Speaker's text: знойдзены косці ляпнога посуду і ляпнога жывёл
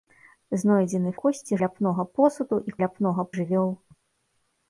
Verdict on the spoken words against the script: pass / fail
pass